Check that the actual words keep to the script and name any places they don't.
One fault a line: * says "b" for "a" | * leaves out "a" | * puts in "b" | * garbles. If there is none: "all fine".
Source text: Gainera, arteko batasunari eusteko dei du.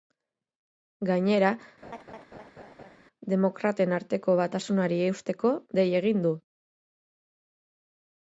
* puts in "demokraten"
* puts in "egin"